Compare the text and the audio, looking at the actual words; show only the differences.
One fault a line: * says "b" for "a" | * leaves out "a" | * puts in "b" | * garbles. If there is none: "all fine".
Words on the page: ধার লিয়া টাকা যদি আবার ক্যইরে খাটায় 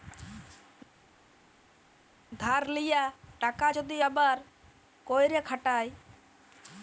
all fine